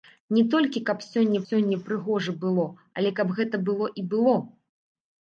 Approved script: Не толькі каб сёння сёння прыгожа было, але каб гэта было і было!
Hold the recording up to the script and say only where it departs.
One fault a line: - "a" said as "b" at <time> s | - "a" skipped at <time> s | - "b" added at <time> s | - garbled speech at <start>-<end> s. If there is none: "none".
none